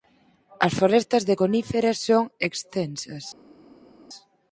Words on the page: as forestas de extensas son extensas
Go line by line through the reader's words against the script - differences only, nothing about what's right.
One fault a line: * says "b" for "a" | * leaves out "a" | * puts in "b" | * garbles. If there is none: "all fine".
* says "coníferas" for "extensas"